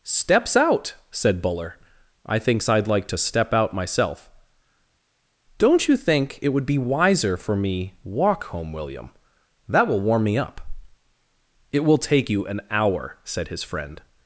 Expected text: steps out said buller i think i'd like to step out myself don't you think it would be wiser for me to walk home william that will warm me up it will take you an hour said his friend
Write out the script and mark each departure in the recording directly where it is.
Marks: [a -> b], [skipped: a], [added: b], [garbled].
steps out said buller i [think -> thinks] i'd like to step out myself don't you think it would be wiser for me [skipped: to] walk home william that will warm me up it will take you an hour said his friend